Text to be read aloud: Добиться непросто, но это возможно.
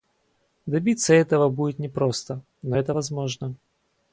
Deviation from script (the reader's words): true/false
true